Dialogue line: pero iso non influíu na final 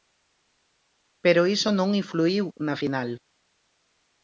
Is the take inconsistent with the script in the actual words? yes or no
no